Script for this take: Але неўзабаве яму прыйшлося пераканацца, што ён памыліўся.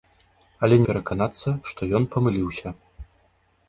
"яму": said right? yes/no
no